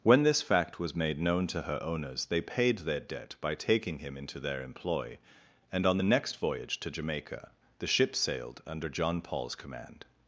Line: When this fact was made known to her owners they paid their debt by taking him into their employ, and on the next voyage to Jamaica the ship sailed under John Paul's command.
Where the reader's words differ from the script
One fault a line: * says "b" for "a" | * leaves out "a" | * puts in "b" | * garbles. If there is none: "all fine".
all fine